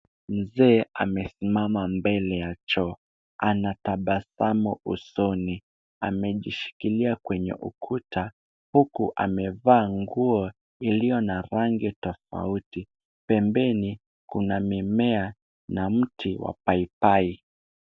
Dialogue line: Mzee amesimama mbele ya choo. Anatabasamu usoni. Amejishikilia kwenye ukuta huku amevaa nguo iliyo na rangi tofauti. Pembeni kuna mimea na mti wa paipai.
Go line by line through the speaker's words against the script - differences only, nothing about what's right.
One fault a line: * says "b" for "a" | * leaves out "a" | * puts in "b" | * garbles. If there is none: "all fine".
all fine